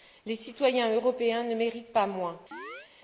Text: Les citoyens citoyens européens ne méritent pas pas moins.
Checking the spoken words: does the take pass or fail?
fail